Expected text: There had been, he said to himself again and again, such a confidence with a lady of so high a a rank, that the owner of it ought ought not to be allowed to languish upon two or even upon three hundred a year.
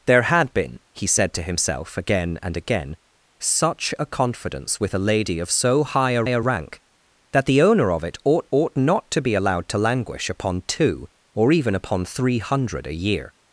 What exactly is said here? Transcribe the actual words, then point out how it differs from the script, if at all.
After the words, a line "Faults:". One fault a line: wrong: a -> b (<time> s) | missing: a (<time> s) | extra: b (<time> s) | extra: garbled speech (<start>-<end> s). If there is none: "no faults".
There had been, he said to himself again and again, such a confidence with a lady of so high a a rank, that the owner of it ought ought not to be allowed to languish upon two or even upon three hundred a year.
Faults:
no faults